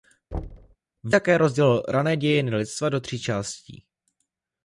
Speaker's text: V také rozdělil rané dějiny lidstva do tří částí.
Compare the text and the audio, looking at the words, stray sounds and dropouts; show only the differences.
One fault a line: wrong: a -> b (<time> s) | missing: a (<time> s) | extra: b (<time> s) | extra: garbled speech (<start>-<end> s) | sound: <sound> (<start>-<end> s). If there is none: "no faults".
sound: thud (0.3-0.8 s)